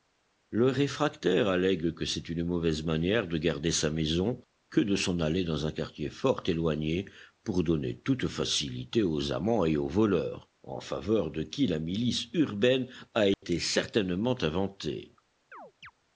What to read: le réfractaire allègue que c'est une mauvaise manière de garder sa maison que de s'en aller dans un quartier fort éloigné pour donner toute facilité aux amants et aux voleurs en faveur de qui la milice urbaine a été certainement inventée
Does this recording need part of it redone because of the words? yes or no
no